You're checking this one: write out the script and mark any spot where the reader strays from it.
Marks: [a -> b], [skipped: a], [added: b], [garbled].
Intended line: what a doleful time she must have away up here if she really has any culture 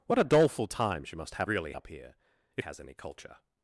what a doleful time she must have [away -> really] up here if [skipped: she really] has any culture